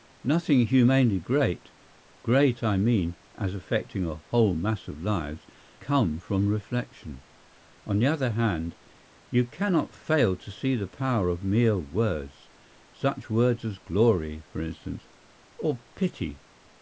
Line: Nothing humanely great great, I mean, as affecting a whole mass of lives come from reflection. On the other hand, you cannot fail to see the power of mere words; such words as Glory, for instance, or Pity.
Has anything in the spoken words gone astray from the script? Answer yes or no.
no